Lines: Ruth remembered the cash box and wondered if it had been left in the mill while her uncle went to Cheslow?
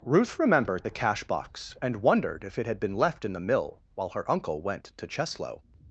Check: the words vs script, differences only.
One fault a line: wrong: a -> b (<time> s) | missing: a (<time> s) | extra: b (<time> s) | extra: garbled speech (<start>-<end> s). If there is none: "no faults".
no faults